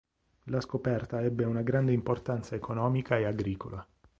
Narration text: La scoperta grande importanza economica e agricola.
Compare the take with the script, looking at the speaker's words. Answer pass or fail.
fail